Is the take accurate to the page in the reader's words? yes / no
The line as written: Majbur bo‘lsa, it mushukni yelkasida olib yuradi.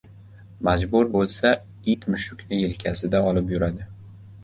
yes